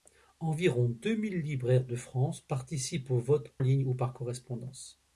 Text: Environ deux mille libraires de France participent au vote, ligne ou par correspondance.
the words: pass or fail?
pass